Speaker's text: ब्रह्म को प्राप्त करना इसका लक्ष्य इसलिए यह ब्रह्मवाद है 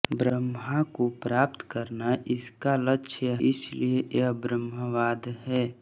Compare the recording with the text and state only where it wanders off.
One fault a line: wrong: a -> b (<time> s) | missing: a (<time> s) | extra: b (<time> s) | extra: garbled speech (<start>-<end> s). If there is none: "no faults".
no faults